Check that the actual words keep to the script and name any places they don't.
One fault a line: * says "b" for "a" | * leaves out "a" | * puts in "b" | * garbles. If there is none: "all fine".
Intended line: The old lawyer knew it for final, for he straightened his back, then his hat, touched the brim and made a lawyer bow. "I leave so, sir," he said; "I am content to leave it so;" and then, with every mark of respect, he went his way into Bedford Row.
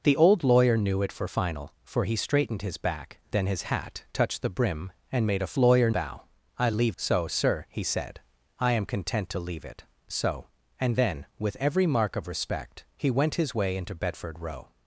all fine